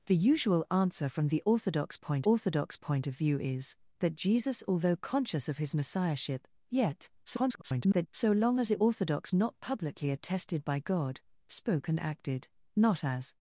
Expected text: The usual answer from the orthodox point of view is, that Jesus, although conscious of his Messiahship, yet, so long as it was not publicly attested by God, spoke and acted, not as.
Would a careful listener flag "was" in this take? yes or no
yes